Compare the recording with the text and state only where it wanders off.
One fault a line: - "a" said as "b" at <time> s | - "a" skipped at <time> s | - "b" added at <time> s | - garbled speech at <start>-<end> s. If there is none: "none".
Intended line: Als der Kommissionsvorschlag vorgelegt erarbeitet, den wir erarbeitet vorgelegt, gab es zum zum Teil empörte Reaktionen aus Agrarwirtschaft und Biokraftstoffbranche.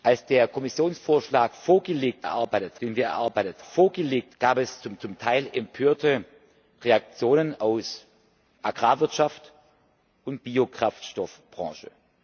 none